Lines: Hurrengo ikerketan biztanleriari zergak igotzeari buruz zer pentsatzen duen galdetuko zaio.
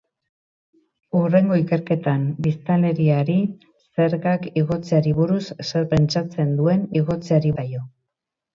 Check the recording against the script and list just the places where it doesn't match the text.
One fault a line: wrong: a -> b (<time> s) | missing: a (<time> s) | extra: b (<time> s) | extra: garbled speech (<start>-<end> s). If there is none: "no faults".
wrong: galdetuko -> igotzeari (7.0 s)